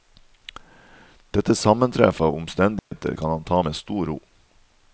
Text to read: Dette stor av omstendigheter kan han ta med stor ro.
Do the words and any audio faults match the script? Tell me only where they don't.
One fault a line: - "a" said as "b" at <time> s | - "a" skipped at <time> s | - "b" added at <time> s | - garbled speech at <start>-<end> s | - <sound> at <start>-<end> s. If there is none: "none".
- "stor" said as "sammentreff" at 1.6 s
- dropout at 2.8-2.9 s